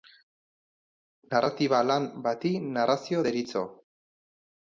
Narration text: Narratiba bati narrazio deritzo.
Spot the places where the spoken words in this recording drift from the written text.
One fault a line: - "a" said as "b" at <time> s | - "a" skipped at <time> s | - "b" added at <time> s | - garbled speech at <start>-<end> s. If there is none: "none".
- "lan" added at 1.9 s